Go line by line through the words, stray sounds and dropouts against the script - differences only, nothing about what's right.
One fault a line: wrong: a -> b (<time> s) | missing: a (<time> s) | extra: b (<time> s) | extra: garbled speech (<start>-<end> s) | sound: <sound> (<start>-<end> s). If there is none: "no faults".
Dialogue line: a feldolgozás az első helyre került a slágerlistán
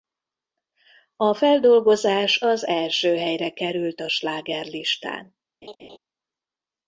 sound: laugh (5.6-6.0 s)